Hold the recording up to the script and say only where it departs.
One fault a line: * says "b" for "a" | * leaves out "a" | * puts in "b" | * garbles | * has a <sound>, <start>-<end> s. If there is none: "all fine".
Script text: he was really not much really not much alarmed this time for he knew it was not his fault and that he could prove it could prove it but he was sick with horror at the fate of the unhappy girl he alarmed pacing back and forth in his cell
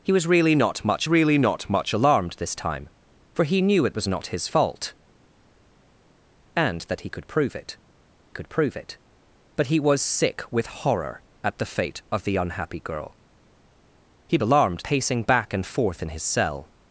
all fine